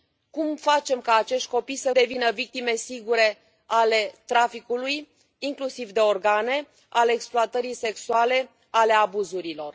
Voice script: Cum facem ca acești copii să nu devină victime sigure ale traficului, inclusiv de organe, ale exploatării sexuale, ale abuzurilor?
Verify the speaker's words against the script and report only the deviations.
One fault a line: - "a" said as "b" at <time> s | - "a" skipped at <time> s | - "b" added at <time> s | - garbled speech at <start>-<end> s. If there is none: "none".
- "nu" skipped at 1.9 s